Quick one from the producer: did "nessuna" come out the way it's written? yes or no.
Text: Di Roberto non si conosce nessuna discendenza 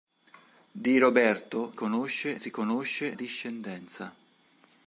no